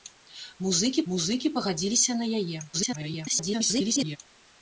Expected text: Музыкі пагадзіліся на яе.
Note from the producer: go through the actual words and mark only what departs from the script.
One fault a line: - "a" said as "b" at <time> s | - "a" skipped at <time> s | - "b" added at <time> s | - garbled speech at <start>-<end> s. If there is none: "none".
- "музыкі" added at 1.1 s
- garbled speech at 2.7-4.2 s